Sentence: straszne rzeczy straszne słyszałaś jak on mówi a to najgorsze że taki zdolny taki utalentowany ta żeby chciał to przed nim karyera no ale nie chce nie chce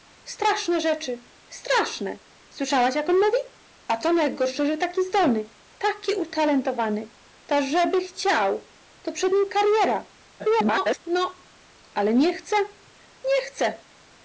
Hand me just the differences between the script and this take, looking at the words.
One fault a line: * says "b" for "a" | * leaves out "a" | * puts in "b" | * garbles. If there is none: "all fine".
* garbles